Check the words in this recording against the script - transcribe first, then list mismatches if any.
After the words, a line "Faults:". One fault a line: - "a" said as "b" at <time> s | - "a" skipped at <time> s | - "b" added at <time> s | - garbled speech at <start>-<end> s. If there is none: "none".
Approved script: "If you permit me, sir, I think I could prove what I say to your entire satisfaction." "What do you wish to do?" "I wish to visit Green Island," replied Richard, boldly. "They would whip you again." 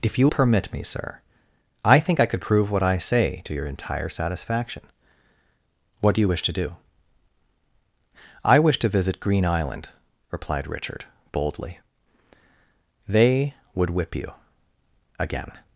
"If you permit me, sir, I think I could prove what I say to your entire satisfaction." "What do you wish to do?" "I wish to visit Green Island," replied Richard, boldly. "They would whip you again."
Faults:
none